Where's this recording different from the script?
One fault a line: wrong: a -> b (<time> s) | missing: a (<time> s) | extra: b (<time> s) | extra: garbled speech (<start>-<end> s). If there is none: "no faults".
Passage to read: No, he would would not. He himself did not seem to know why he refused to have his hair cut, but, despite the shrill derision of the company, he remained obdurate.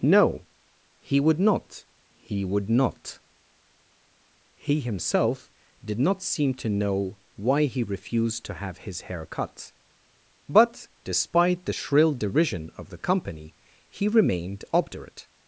extra: not he (1.4 s)